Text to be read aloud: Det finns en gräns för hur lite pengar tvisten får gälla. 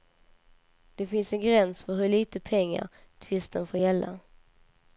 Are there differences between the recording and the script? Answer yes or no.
no